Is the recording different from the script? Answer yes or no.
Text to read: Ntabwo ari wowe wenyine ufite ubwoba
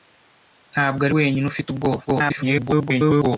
yes